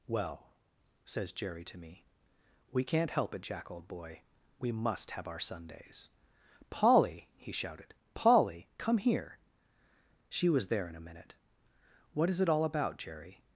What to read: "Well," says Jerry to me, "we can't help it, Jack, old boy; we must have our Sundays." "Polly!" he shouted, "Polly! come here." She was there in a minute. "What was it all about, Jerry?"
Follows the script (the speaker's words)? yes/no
no